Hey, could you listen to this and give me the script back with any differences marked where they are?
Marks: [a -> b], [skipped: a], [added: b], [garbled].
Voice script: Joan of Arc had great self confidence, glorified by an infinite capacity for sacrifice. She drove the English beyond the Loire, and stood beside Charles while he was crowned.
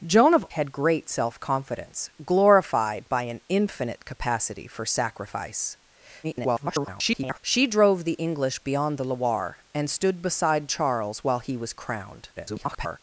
Joan of [skipped: Arc] had great self confidence, glorified by an infinite capacity for sacrifice. [garbled] She drove the English beyond the Loire, and stood beside Charles while he was crowned. [garbled]